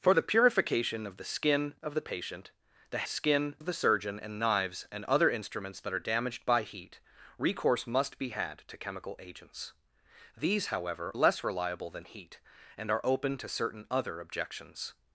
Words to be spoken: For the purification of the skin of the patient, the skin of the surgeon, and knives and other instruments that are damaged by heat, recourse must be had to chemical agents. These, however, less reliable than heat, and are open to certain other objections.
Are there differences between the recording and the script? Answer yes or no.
no